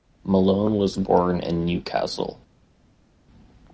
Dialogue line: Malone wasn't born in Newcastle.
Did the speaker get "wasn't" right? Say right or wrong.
wrong